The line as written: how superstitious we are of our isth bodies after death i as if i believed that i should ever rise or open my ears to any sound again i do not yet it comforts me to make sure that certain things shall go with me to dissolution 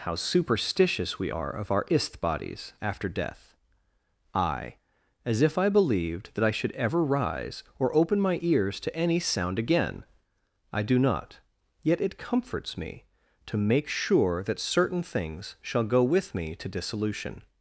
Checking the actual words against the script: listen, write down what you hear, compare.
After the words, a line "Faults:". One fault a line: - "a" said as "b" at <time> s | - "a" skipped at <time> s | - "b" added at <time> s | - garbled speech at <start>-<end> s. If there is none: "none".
how superstitious we are of our isth bodies after death i as if i believed that i should ever rise or open my ears to any sound again i do not yet it comforts me to make sure that certain things shall go with me to dissolution
Faults:
none